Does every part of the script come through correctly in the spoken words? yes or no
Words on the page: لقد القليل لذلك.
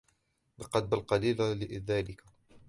yes